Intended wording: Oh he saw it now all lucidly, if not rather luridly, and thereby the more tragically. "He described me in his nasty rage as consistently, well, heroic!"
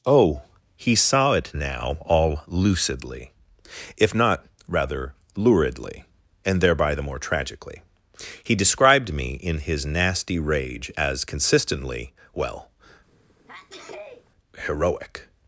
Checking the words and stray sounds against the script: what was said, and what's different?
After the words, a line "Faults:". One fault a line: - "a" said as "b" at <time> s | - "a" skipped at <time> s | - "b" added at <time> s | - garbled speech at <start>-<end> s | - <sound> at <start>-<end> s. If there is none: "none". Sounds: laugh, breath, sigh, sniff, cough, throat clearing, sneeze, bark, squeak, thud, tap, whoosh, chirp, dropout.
Oh he saw it now all lucidly, if not rather luridly, and thereby the more tragically. "He described me in his nasty rage as consistently, well, heroic!"
Faults:
- sneeze at 13.1-14.3 s